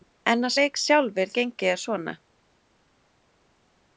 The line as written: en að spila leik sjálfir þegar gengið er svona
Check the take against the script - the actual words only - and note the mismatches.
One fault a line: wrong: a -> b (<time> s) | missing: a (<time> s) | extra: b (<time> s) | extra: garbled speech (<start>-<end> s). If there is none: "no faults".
missing: spila (0.5 s)
missing: þegar (1.3 s)